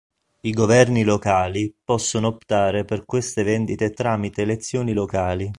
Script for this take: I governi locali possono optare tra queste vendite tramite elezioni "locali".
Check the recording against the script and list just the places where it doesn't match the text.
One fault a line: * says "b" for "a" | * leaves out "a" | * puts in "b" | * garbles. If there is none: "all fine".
* says "per" for "tra"